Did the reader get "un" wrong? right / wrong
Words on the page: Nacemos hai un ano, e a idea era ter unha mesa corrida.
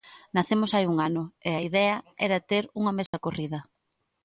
right